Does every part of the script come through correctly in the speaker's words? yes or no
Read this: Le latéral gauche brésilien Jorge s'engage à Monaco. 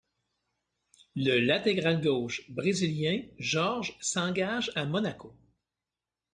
yes